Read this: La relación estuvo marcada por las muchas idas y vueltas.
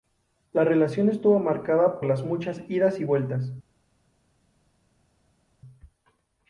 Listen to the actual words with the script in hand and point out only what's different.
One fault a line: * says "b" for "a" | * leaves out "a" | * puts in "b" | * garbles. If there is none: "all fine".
* leaves out "por"